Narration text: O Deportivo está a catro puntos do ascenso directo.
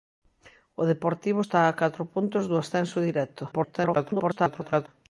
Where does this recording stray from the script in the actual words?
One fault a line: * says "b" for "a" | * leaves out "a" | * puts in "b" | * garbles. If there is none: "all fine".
* garbles